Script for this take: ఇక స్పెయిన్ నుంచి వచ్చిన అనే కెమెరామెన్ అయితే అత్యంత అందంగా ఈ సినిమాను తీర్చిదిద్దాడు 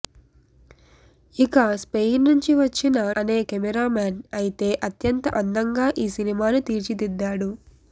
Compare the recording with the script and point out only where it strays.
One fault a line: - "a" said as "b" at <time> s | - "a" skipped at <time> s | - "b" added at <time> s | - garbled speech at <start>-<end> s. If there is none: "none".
none